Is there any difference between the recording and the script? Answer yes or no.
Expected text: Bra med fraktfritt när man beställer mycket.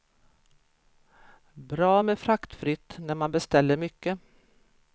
no